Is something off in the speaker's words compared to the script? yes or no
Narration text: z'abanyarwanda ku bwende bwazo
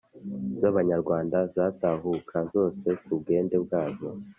yes